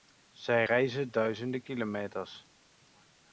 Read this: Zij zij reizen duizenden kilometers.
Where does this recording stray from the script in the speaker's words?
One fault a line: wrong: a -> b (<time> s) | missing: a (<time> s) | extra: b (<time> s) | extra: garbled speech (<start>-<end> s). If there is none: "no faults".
missing: zij (0.7 s)